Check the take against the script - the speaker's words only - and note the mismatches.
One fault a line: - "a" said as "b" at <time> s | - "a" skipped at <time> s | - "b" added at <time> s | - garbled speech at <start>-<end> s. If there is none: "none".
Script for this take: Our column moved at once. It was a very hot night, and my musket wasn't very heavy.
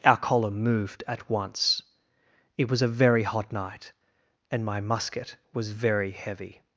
- "wasn't" said as "was" at 5.5 s